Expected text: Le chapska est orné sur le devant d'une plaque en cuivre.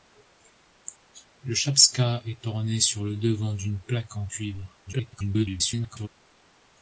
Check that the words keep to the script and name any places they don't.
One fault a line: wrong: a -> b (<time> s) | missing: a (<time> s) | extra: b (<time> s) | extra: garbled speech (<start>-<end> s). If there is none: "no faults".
extra: garbled speech (4.9-6.1 s)